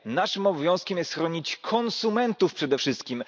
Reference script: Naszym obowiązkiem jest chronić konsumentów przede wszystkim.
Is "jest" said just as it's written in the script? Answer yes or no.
yes